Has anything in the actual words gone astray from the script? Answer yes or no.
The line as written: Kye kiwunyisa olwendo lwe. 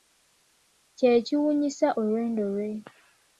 no